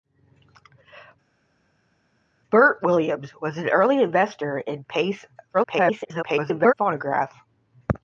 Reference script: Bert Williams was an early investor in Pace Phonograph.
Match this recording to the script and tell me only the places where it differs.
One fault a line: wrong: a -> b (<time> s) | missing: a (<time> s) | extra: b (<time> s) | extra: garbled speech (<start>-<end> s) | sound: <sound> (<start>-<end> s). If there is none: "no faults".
extra: garbled speech (5.5-6.7 s)